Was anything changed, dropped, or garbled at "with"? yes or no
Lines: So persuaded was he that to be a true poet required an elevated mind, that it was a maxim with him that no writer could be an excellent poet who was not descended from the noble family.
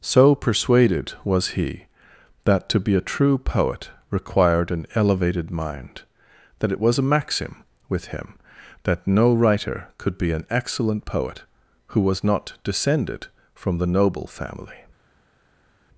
no